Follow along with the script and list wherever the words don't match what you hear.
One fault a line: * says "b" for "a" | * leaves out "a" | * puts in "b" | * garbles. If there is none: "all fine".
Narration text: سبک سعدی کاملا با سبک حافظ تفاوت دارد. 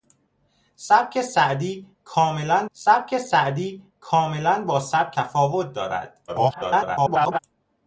* puts in "سبک سعدی کاملا"
* leaves out "حافظ"
* garbles